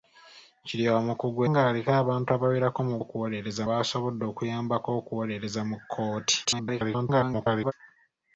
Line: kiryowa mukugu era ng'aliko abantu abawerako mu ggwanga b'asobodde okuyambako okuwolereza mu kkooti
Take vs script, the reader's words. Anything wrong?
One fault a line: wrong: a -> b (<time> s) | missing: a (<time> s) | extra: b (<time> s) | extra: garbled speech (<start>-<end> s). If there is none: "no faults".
missing: era (1.4 s)
wrong: ggwanga -> okuwolereza (3.0 s)
extra: garbled speech (6.4-7.7 s)